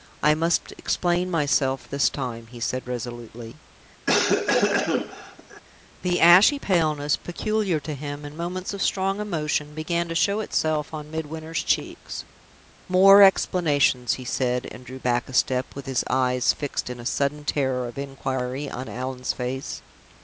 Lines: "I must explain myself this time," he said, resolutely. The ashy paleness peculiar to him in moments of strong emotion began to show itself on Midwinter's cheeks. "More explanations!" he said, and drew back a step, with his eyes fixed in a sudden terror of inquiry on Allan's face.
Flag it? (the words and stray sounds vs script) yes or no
yes